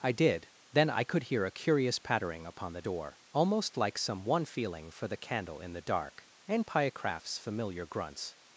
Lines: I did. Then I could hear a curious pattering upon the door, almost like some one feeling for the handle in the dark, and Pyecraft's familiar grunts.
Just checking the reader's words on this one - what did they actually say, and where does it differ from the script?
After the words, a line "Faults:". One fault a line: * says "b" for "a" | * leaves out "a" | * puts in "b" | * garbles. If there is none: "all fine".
I did. Then I could hear a curious pattering upon the door, almost like some one feeling for the candle in the dark, and Pyecraft's familiar grunts.
Faults:
* says "candle" for "handle"